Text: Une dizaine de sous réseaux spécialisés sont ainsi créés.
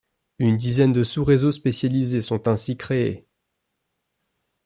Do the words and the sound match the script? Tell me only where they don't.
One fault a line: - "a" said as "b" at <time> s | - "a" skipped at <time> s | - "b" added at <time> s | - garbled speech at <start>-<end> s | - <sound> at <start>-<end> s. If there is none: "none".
none